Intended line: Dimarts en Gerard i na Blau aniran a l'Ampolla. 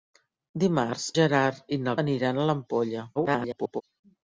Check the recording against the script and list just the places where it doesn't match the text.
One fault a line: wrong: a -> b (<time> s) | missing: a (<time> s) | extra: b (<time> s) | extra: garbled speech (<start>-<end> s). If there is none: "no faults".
missing: en (1.0 s)
missing: Blau (2.0 s)
extra: garbled speech (3.2-3.8 s)